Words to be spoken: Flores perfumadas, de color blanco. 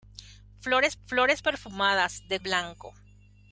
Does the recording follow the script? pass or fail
fail